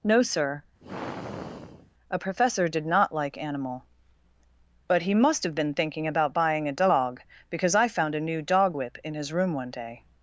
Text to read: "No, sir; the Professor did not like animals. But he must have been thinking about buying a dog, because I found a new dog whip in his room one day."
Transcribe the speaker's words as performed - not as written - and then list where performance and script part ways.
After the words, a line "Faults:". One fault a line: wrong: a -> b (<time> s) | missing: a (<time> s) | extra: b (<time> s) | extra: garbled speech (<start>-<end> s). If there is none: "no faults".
"No, sir; a Professor did not like animal. But he must have been thinking about buying a dog, because I found a new dog whip in his room one day."
Faults:
wrong: the -> a (2.1 s)
wrong: animals -> animal (3.4 s)